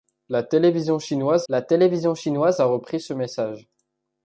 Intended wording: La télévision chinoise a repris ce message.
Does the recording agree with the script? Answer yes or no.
no